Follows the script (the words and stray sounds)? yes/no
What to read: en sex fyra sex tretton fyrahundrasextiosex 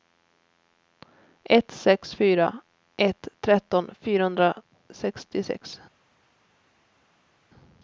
no